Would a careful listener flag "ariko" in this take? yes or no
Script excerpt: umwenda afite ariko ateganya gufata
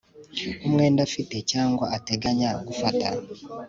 yes